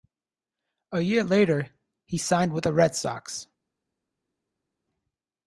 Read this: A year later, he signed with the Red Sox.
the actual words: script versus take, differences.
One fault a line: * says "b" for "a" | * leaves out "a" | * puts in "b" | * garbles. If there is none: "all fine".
all fine